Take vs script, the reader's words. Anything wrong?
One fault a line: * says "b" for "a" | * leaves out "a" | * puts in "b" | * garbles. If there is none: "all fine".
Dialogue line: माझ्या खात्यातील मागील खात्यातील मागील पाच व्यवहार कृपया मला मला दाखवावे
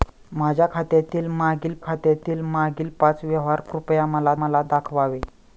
all fine